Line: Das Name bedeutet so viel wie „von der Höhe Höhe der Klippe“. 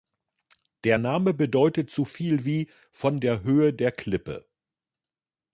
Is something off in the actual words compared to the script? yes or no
yes